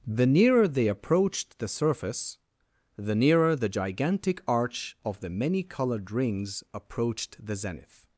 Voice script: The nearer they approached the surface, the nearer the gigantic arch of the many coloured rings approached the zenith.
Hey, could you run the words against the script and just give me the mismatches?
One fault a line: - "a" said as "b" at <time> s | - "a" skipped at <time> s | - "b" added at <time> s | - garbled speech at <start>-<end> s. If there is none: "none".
none